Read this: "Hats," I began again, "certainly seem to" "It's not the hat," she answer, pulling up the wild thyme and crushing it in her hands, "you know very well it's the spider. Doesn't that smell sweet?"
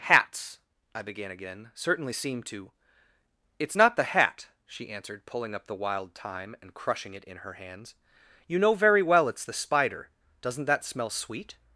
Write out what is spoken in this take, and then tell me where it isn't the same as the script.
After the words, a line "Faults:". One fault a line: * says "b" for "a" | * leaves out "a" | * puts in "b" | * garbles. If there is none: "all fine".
"Hats," I began again, "certainly seem to" "It's not the hat," she answered, pulling up the wild thyme and crushing it in her hands, "you know very well it's the spider. Doesn't that smell sweet?"
Faults:
* says "answered" for "answer"